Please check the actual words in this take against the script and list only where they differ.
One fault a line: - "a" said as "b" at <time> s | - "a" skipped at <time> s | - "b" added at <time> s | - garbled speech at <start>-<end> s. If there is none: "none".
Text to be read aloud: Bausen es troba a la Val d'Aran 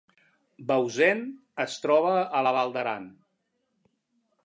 none